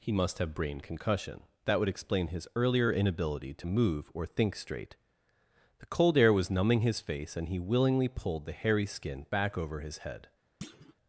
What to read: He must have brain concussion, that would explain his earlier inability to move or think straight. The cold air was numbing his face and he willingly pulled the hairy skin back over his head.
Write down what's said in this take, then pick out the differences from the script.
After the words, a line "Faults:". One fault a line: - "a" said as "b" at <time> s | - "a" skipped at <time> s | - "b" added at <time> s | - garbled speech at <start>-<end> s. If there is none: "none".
He must have brain concussion, that would explain his earlier inability to move or think straight. The cold air was numbing his face and he willingly pulled the hairy skin back over his head.
Faults:
none